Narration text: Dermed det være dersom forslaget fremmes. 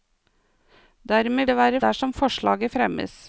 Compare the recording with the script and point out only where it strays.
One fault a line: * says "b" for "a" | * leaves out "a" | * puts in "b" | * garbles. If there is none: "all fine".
all fine